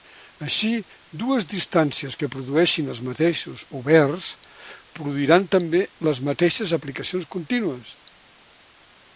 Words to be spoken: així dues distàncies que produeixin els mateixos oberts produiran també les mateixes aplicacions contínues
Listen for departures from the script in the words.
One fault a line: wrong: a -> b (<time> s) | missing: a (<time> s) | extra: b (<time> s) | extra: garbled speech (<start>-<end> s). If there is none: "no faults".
no faults